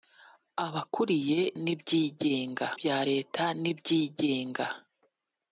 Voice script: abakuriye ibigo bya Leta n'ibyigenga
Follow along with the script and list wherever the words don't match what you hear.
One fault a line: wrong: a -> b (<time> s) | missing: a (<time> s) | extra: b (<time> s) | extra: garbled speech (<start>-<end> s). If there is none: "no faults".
wrong: ibigo -> n'ibyigenga (1.6 s)